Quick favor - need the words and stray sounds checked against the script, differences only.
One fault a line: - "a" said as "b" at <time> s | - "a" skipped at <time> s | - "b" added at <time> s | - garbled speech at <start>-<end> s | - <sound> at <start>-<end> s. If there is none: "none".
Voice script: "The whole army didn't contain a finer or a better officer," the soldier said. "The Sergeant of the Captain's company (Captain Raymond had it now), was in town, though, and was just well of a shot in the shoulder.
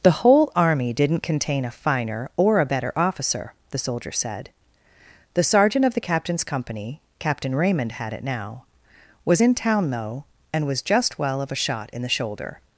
none